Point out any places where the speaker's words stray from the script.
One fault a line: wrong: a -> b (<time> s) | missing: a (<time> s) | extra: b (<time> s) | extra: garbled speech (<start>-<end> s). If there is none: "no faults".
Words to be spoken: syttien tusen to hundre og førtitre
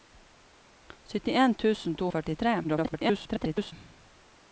missing: hundre (2.1 s)
extra: garbled speech (2.6-3.7 s)